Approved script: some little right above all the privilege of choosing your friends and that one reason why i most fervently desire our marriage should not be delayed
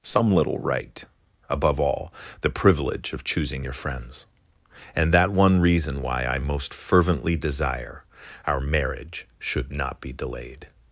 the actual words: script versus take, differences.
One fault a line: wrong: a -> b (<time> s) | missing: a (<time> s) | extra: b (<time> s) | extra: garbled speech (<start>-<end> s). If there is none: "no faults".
no faults